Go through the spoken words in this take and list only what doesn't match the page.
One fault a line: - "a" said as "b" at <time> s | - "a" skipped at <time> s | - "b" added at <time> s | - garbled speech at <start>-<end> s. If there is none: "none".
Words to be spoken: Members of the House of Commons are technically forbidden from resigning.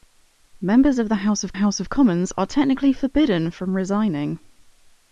- "House of" added at 1.5 s